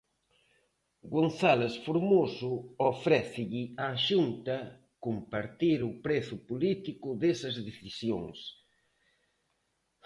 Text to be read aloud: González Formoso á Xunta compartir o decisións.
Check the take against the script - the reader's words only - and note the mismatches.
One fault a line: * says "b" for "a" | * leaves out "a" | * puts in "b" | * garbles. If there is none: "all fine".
* puts in "ofrécelle"
* puts in "prezo político desas"